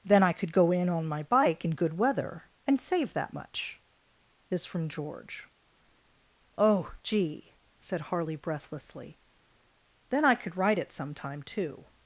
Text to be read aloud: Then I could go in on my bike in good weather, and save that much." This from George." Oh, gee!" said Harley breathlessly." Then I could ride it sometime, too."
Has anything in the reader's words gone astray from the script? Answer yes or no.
no